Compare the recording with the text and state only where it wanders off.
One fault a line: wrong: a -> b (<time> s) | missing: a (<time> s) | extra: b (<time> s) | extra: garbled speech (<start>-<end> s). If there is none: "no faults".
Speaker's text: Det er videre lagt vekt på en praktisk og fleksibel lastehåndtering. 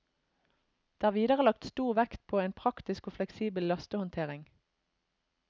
extra: stor (1.7 s)